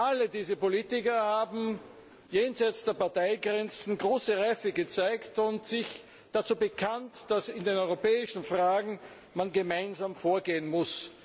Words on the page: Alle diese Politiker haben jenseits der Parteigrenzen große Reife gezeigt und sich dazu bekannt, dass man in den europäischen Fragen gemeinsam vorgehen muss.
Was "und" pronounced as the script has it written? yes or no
yes